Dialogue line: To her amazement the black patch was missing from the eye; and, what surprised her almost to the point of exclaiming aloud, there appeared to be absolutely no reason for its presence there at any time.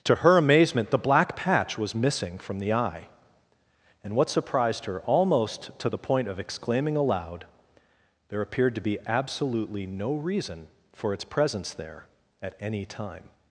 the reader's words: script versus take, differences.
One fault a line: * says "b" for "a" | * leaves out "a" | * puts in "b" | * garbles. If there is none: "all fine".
all fine